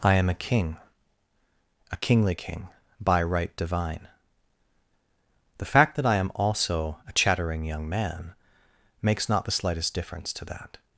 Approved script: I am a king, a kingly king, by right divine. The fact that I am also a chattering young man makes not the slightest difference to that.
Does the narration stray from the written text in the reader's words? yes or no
no